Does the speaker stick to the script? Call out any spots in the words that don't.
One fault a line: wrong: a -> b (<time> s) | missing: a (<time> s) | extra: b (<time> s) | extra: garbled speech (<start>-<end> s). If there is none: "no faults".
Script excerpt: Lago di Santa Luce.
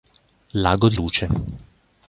missing: Santa (0.9 s)